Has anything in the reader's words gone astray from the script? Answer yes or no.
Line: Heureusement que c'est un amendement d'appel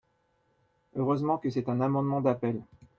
no